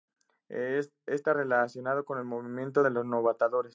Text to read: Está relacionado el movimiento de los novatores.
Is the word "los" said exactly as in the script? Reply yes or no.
yes